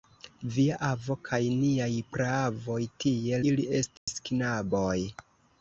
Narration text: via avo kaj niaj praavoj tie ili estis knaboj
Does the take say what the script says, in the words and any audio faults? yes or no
no